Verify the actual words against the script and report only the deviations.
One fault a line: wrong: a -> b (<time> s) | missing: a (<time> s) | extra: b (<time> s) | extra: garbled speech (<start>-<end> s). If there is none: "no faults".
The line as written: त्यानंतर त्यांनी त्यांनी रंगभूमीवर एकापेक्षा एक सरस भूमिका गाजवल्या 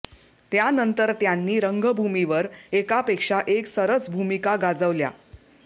missing: त्यांनी (1.6 s)